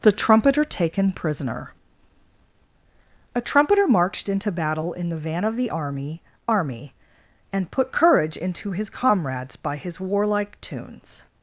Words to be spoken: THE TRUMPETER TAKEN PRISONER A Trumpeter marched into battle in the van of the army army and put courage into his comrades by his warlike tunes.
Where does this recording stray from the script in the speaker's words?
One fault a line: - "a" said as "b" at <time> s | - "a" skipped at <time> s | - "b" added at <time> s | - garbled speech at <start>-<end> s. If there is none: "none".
none